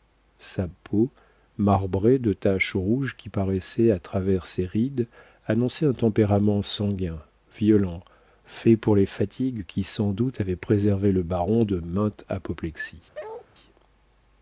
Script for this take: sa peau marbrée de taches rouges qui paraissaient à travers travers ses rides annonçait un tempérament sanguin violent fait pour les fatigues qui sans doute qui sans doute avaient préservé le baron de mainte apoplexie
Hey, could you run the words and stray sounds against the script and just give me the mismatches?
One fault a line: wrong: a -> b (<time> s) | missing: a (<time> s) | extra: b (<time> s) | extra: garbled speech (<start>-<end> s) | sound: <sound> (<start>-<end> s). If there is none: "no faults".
missing: travers (4.5 s)
missing: qui sans doute (10.4 s)
sound: bark (13.1-13.5 s)